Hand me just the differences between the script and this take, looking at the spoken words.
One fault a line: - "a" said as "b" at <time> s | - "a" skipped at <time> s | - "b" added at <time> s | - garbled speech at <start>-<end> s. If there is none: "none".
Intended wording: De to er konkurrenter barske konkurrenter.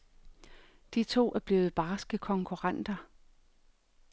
- "konkurrenter" said as "blevet" at 1.4 s